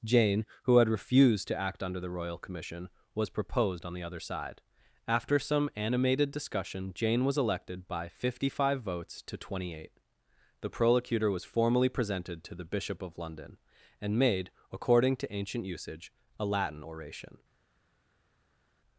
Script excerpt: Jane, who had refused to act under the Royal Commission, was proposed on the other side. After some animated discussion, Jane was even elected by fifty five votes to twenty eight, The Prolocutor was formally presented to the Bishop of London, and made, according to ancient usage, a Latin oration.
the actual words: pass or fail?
fail